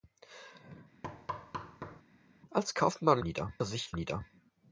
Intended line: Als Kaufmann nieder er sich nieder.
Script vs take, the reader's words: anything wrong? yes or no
no